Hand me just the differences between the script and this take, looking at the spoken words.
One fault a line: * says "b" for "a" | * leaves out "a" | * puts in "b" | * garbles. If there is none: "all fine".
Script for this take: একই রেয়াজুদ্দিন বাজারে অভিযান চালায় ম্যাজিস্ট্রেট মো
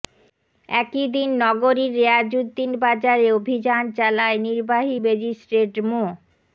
* puts in "দিন নগরীর"
* puts in "নির্বাহী"